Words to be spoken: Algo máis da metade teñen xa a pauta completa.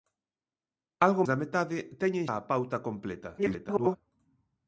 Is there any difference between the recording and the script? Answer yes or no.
yes